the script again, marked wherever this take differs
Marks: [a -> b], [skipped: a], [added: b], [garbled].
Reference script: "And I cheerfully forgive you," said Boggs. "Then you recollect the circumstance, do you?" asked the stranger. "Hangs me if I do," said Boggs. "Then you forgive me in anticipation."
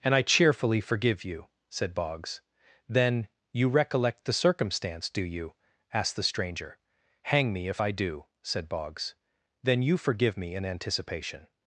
"And I cheerfully forgive you," said Boggs. "Then you recollect the circumstance, do you?" asked the stranger. ["Hangs -> Hang] me if I do," said Boggs. "Then you forgive me in anticipation."